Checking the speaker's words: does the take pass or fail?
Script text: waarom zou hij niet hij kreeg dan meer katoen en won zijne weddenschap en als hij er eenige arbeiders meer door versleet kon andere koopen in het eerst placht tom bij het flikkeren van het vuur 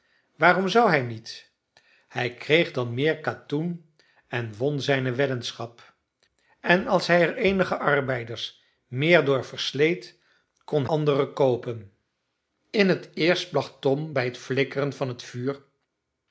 pass